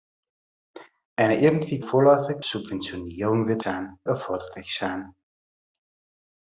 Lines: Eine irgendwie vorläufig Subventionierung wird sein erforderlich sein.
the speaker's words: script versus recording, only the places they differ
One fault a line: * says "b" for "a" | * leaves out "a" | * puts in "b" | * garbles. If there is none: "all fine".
all fine